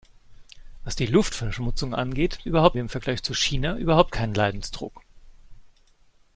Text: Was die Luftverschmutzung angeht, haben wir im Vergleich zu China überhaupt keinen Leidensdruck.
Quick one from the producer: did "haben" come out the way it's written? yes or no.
no